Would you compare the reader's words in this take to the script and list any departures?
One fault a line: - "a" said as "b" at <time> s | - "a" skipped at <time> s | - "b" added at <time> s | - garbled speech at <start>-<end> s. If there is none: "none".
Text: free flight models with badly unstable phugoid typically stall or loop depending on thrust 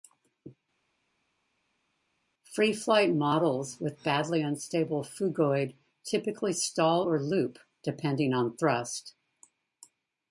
none